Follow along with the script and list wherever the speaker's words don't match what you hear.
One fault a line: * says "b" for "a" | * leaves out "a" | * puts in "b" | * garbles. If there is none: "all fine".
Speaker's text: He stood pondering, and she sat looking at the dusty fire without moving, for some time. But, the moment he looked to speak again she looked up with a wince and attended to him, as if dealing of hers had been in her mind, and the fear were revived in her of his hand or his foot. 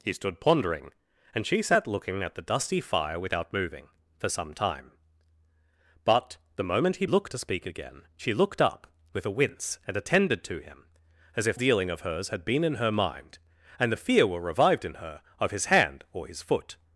all fine